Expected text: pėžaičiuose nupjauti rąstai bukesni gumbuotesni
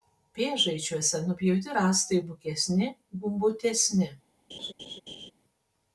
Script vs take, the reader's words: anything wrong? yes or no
no